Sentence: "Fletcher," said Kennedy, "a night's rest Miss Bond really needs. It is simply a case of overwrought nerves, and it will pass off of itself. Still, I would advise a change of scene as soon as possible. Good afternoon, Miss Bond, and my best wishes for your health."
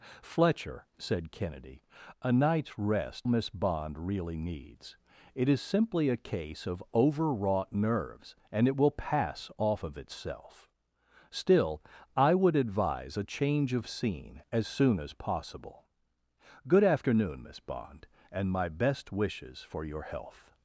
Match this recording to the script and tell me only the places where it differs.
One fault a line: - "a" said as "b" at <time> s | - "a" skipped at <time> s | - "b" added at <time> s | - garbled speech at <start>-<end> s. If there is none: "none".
none